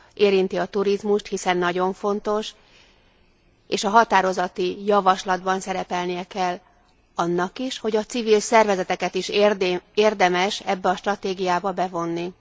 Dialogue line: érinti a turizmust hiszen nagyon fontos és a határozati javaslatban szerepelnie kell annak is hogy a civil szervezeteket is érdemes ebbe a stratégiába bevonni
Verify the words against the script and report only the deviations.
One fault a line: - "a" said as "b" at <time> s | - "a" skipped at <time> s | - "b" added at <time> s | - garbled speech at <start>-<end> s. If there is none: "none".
none